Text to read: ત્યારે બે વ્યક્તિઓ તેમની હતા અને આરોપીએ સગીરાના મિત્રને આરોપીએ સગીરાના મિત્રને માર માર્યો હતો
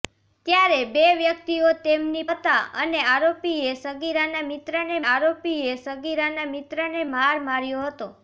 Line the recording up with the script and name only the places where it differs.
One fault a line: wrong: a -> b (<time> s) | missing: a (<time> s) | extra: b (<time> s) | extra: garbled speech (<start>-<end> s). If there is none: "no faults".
no faults